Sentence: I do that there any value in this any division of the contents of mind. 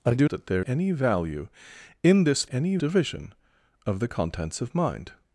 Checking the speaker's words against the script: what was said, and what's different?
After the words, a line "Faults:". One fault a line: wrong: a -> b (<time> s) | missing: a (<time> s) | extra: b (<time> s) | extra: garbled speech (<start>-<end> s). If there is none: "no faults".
I do that there any value in this any division of the contents of mind.
Faults:
no faults